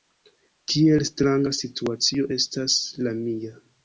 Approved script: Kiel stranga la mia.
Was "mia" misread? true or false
false